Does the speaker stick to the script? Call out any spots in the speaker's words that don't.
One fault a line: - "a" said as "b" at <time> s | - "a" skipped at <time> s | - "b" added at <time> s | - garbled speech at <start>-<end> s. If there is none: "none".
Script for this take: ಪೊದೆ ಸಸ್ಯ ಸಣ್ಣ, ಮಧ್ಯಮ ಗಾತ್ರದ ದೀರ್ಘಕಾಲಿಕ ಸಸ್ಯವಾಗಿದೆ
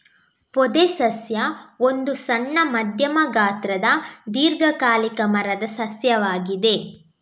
- "ಒಂದು" added at 1.8 s
- "ಮರದ" added at 5.3 s